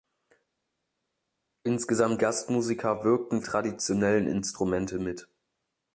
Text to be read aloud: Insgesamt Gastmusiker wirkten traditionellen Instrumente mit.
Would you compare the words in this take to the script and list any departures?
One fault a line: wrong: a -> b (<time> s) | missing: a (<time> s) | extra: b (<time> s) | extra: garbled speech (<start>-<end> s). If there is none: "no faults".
no faults